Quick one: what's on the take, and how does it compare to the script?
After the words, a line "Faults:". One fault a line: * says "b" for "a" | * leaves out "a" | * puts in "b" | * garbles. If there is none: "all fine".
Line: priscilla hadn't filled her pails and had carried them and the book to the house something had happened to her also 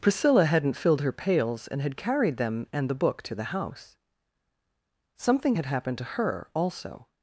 priscilla hadn't filled her pails and had carried them and the book to the house something had happened to her also
Faults:
all fine